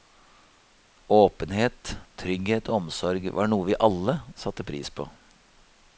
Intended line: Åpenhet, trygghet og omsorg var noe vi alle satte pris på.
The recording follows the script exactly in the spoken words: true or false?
true